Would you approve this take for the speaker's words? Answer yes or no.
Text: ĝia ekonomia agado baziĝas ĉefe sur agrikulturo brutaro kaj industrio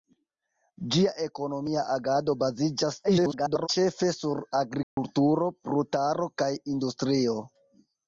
no